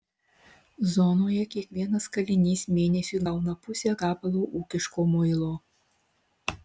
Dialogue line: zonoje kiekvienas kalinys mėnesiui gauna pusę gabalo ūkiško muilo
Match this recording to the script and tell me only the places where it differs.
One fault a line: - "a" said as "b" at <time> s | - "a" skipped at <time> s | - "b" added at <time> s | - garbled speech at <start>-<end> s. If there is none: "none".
none